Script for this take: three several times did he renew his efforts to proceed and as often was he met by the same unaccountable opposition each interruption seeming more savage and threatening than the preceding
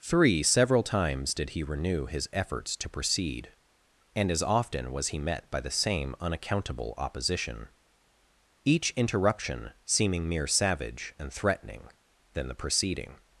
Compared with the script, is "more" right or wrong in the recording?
wrong